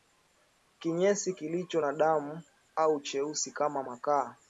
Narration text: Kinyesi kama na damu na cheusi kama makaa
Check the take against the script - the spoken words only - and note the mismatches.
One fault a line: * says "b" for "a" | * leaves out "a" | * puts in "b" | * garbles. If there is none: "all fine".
* says "kilicho" for "kama"
* says "au" for "na"